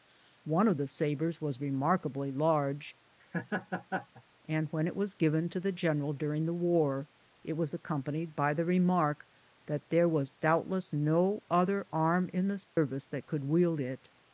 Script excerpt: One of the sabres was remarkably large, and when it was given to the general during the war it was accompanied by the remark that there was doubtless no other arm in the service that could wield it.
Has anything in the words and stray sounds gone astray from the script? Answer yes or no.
yes